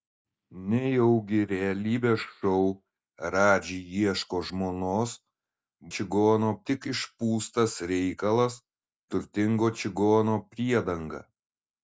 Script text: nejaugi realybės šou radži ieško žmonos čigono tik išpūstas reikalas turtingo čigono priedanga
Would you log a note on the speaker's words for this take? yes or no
no